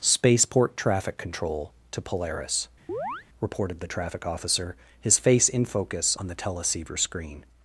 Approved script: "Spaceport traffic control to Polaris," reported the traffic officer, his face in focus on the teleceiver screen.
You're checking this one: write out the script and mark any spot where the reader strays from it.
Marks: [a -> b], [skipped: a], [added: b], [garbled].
"Spaceport traffic control to Polaris," reported the traffic officer, his face in focus on the teleceiver screen.